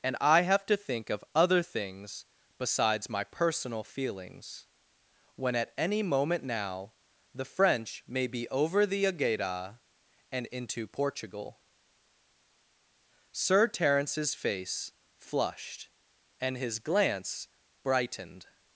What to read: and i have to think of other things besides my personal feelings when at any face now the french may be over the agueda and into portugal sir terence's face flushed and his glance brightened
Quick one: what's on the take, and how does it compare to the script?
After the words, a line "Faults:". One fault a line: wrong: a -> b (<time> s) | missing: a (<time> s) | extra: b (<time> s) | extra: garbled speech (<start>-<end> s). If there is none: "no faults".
and i have to think of other things besides my personal feelings when at any moment now the french may be over the agueda and into portugal sir terence's face flushed and his glance brightened
Faults:
wrong: face -> moment (6.0 s)